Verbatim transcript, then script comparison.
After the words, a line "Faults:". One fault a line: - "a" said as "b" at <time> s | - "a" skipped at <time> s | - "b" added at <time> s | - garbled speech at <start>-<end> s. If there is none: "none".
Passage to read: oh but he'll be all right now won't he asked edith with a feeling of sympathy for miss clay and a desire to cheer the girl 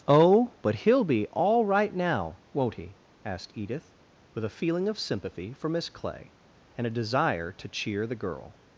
oh but he'll be all right now won't he asked edith with a feeling of sympathy for miss clay and a desire to cheer the girl
Faults:
none